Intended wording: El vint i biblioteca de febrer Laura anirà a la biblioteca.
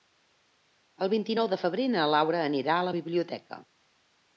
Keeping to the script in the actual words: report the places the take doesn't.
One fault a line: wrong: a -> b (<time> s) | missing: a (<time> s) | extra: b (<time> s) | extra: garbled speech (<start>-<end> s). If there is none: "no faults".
wrong: biblioteca -> nou (1.4 s)
extra: na (2.0 s)